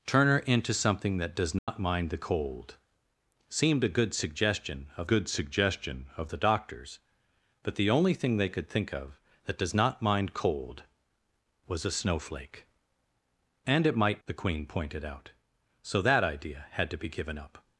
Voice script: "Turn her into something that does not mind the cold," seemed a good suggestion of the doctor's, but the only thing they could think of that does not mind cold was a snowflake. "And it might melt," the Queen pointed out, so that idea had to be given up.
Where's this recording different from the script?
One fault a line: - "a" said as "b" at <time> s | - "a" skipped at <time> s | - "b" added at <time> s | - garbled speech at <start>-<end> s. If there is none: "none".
- "good suggestion of" added at 5.1 s
- "melt" skipped at 14.2 s